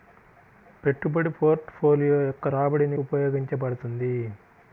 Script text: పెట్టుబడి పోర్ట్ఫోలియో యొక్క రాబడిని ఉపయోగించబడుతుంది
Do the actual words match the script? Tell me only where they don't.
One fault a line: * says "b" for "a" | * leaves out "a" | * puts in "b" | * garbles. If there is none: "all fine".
all fine